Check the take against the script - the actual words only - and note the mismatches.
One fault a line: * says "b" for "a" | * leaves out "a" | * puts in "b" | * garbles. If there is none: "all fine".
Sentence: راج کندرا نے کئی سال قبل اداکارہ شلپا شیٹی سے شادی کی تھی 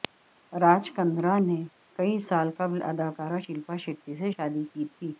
all fine